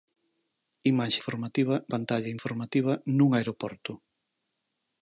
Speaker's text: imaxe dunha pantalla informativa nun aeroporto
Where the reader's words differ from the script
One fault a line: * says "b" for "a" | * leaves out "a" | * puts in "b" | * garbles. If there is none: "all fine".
* says "informativa" for "dunha"